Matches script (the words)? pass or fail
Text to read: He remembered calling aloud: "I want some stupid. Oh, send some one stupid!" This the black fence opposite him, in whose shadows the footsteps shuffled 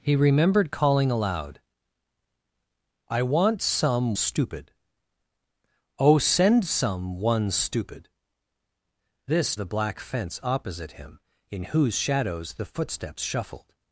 pass